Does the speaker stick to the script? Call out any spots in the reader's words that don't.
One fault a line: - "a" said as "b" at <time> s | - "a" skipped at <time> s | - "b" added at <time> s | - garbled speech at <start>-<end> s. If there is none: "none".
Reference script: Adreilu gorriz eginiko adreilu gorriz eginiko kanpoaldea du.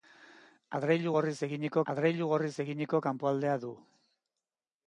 none